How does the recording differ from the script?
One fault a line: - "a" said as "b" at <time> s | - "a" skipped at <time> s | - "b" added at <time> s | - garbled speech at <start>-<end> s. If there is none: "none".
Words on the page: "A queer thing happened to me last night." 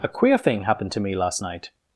none